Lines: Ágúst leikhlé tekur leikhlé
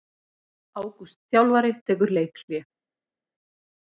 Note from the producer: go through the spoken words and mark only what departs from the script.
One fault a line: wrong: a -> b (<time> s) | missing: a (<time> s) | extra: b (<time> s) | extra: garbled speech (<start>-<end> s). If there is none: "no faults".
wrong: leikhlé -> þjálfari (1.4 s)